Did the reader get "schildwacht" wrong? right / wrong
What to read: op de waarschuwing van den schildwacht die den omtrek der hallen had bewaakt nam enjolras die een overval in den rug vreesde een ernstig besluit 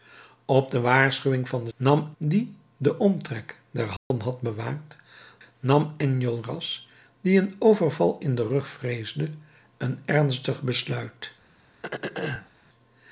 wrong